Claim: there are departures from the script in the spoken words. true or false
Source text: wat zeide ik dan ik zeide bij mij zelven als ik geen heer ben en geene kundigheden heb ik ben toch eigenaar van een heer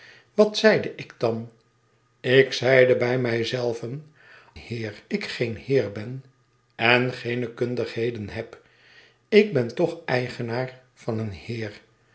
true